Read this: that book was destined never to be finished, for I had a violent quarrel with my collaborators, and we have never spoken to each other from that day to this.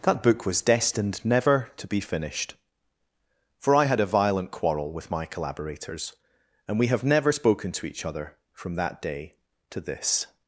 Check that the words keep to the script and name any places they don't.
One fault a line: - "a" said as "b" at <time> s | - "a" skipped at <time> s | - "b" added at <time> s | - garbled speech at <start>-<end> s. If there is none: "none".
none